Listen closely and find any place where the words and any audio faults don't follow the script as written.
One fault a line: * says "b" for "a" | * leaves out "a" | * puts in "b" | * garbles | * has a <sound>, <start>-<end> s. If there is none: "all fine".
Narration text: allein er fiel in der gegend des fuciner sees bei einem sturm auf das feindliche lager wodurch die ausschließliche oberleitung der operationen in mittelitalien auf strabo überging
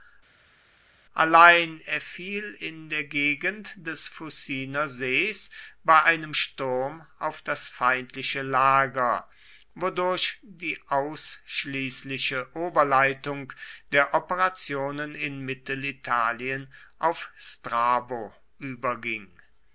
all fine